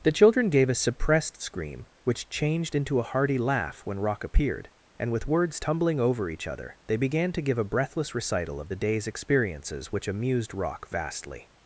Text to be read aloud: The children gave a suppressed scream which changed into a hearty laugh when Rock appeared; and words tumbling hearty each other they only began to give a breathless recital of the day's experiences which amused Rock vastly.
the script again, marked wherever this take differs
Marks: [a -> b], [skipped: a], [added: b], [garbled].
The children gave a suppressed scream which changed into a hearty laugh when Rock appeared; and [added: with] words tumbling [hearty -> over] each other they [skipped: only] began to give a breathless recital of the day's experiences which amused Rock vastly.